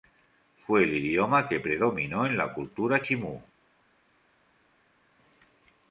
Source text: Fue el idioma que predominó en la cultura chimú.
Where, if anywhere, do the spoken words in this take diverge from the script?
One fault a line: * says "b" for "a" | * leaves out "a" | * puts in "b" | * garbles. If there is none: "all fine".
all fine